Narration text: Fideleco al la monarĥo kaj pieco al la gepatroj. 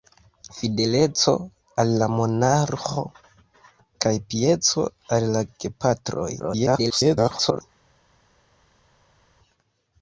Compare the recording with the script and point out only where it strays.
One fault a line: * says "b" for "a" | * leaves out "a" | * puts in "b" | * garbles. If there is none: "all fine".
* garbles